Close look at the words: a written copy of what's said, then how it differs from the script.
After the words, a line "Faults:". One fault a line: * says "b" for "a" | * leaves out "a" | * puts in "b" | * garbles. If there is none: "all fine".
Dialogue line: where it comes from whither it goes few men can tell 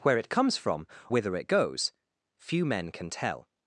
where it comes from whither it goes few men can tell
Faults:
all fine